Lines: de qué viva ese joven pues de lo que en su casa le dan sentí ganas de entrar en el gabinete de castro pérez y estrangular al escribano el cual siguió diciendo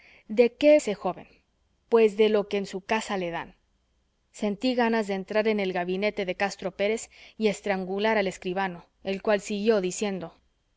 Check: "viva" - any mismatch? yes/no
yes